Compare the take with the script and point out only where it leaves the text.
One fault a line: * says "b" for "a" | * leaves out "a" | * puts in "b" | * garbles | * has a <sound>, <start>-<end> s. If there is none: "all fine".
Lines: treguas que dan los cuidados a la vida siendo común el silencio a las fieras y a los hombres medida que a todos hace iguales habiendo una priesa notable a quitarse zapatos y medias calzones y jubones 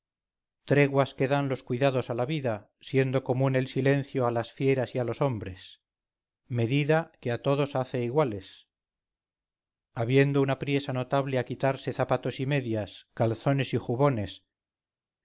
all fine